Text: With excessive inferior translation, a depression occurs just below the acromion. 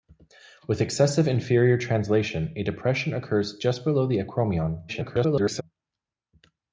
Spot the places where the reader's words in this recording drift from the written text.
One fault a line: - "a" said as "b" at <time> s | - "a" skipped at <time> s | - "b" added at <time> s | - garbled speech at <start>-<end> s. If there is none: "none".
- garbled speech at 4.9-5.6 s